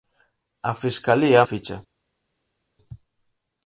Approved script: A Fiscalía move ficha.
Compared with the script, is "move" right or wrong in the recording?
wrong